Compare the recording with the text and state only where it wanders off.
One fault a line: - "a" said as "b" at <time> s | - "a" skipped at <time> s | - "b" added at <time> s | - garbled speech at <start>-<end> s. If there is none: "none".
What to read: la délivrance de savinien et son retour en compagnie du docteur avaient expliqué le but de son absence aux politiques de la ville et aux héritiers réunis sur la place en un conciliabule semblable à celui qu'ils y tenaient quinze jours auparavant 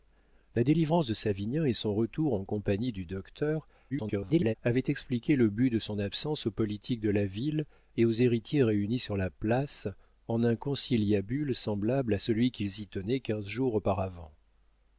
- garbled speech at 3.9-4.5 s